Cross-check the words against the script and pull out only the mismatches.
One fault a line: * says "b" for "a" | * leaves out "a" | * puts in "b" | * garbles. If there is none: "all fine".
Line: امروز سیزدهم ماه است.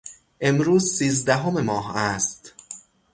all fine